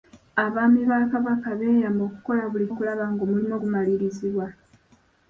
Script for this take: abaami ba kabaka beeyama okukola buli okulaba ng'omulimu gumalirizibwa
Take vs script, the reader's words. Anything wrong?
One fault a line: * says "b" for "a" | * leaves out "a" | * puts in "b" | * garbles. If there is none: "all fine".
all fine